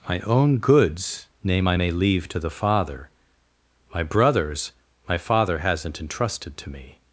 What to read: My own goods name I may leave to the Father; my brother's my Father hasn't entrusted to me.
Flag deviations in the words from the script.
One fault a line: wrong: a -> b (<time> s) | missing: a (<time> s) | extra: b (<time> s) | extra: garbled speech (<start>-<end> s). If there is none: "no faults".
no faults